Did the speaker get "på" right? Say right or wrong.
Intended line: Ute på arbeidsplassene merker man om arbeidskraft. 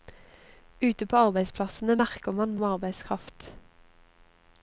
right